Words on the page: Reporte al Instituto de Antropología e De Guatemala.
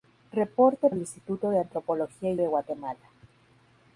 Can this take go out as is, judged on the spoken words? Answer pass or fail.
pass